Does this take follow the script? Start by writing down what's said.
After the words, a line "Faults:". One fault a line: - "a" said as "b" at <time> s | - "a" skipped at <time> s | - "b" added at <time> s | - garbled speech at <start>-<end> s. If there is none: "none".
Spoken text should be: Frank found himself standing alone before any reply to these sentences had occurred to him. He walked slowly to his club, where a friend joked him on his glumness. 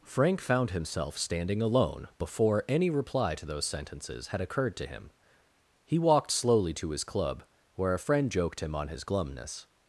Frank found himself standing alone before any reply to those sentences had occurred to him. He walked slowly to his club, where a friend joked him on his glumness.
Faults:
- "these" said as "those" at 3.5 s